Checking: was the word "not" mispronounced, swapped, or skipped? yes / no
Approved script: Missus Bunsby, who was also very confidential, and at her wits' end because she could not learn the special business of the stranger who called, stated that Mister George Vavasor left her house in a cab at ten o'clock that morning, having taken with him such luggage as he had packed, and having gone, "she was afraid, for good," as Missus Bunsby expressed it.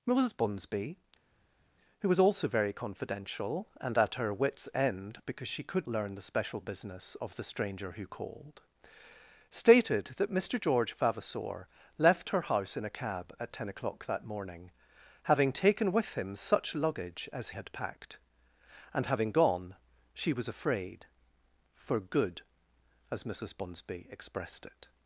yes